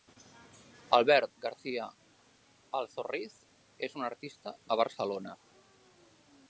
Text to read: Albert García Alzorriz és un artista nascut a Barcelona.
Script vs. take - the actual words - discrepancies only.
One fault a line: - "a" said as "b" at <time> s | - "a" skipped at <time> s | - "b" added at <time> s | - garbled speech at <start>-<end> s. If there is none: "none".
- "nascut" skipped at 4.5 s